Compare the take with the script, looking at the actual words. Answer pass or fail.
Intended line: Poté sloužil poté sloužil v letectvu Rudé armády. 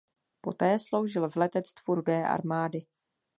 fail